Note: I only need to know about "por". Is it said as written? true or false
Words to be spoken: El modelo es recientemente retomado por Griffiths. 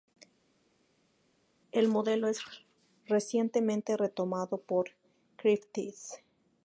true